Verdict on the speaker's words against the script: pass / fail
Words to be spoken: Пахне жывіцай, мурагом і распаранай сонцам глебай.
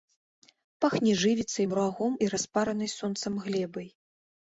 pass